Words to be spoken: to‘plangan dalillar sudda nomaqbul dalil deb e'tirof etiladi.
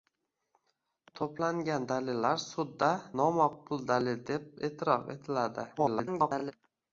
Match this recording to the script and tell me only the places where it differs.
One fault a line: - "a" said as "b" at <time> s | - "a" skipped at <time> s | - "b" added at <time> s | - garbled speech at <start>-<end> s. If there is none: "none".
- garbled speech at 5.8-6.5 s